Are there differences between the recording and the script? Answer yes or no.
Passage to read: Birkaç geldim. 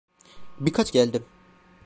no